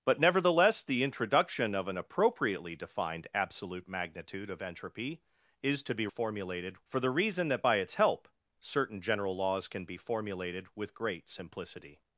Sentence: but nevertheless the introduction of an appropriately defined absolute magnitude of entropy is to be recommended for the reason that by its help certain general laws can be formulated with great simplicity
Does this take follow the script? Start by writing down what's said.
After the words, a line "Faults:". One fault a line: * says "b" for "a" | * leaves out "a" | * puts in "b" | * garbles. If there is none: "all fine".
but nevertheless the introduction of an appropriately defined absolute magnitude of entropy is to be formulated for the reason that by its help certain general laws can be formulated with great simplicity
Faults:
* says "formulated" for "recommended"